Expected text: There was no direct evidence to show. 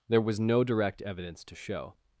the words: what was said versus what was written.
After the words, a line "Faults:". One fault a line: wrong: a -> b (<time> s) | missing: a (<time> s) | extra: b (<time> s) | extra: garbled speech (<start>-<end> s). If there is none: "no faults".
There was no direct evidence to show.
Faults:
no faults